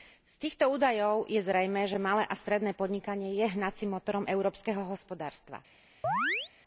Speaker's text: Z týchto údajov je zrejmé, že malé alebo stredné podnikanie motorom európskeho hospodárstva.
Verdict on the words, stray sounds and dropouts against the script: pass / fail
fail